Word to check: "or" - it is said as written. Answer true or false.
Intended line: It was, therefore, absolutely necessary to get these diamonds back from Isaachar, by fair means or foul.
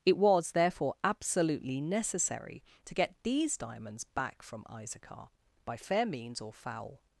true